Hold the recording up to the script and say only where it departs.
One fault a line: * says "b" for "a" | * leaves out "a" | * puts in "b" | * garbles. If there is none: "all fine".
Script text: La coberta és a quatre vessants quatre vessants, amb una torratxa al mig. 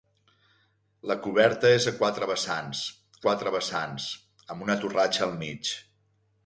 all fine